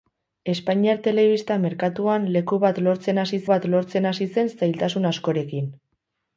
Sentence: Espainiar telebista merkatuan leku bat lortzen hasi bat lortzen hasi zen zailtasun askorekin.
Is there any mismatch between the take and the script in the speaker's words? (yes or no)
no